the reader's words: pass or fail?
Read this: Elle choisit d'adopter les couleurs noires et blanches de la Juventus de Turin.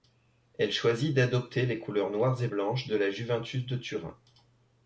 pass